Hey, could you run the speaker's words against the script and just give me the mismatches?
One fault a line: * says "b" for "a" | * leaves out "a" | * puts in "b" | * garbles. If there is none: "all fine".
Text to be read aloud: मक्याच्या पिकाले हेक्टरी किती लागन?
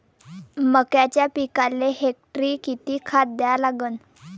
* puts in "खात द्या"